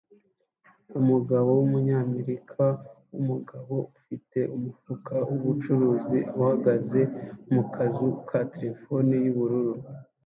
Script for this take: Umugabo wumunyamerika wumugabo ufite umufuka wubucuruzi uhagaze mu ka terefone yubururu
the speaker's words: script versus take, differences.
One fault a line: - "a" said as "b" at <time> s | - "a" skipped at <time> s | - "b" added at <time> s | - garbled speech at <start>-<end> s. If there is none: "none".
- "kazu" added at 7.7 s